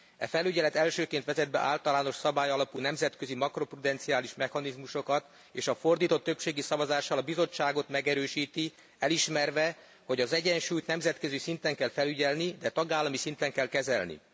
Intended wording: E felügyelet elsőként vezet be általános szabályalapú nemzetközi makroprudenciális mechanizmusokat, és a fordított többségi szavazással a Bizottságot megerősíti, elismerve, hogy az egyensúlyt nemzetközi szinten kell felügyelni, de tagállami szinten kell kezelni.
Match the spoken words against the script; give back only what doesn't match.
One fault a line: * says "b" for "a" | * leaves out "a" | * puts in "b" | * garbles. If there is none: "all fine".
all fine